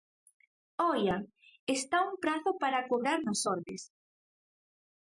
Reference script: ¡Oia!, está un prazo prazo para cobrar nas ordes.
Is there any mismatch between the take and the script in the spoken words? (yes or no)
yes